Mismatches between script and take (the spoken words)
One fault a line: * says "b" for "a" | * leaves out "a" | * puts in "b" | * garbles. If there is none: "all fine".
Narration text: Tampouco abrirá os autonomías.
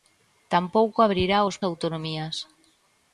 all fine